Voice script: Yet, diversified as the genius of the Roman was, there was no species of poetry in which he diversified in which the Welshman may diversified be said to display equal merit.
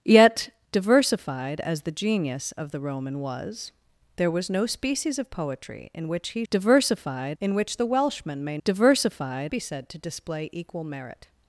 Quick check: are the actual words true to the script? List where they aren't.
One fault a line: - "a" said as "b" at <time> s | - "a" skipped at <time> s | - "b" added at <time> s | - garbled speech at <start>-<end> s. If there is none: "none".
none